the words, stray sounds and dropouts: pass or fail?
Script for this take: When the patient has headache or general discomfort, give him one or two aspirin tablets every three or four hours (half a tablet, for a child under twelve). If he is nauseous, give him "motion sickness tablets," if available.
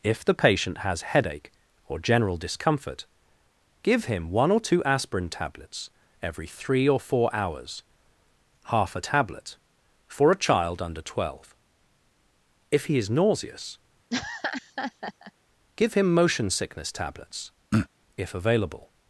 fail